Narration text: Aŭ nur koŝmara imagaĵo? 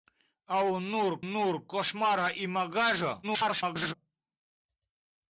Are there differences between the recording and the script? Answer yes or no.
yes